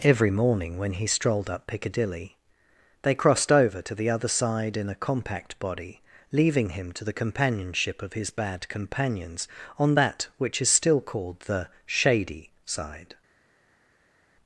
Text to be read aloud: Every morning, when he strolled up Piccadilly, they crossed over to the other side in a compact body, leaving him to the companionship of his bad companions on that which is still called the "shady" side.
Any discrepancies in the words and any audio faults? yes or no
no